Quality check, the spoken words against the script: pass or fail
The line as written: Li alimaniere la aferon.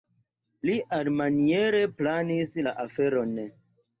fail